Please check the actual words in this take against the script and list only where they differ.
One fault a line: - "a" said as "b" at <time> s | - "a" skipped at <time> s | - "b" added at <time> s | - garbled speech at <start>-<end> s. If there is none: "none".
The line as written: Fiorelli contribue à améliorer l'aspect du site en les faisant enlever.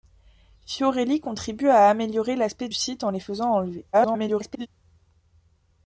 - "du" skipped at 2.7 s
- garbled speech at 3.9-4.7 s